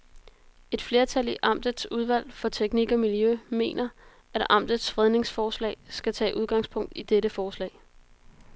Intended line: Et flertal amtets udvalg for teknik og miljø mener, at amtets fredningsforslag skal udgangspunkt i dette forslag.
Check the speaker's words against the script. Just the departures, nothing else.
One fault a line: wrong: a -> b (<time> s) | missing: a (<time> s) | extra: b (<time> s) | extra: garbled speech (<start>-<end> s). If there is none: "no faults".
extra: i (1.3 s)
extra: tage (6.1 s)